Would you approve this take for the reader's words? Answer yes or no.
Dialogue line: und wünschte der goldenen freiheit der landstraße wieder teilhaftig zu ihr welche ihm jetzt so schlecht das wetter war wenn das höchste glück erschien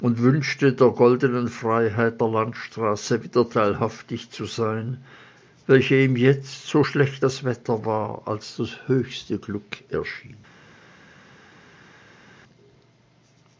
no